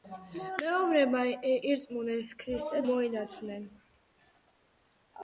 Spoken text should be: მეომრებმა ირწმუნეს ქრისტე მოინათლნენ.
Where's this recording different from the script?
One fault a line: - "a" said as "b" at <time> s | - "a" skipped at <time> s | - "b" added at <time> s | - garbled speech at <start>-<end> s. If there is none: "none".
none